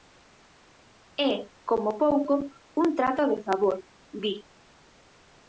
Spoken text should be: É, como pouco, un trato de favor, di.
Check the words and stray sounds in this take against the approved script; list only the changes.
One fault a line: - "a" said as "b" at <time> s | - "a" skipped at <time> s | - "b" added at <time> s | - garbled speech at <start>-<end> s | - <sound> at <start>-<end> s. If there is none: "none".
none